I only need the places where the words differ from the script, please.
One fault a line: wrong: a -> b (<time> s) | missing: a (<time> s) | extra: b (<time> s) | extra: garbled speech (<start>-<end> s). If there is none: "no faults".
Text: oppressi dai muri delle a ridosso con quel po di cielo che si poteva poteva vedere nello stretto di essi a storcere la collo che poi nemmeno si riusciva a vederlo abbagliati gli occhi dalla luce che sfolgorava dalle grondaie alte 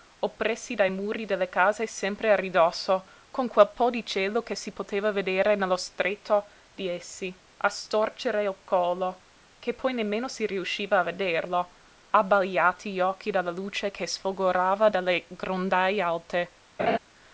extra: case sempre (1.5 s)
missing: poteva (5.1 s)
wrong: la -> il (8.4 s)